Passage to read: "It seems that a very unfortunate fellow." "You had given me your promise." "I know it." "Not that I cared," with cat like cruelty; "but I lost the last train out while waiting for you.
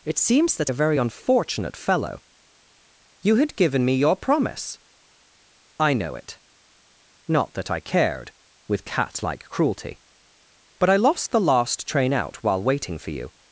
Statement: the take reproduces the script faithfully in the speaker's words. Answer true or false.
true